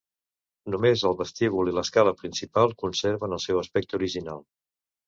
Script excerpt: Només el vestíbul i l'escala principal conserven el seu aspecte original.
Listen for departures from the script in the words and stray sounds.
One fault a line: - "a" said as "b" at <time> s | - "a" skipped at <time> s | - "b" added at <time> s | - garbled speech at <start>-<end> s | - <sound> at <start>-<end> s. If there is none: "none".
none